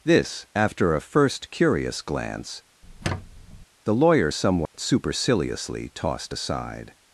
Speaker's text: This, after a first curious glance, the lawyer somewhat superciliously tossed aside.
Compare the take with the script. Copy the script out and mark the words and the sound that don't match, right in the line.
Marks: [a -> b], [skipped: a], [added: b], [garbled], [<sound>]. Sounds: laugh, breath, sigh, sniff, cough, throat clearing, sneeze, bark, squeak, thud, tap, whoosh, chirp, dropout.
This, after a first curious glance, [squeak] the lawyer somewhat [dropout] superciliously tossed aside.